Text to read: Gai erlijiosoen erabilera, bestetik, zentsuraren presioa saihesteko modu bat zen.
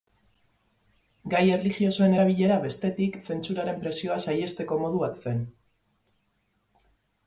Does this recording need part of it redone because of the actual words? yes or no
no